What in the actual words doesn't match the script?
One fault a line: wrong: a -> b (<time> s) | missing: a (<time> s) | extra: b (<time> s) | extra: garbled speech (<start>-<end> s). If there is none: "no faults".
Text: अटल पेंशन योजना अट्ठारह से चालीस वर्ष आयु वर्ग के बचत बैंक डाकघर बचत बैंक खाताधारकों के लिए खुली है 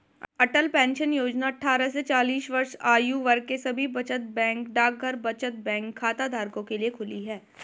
extra: सभी (3.6 s)